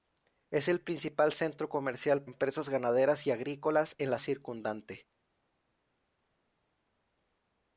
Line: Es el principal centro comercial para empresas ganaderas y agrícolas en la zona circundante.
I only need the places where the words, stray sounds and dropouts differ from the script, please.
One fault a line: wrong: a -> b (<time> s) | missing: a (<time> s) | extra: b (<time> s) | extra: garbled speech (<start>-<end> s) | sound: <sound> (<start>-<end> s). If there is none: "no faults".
missing: para (2.2 s)
missing: zona (4.2 s)